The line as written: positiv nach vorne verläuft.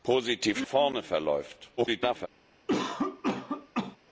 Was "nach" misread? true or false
true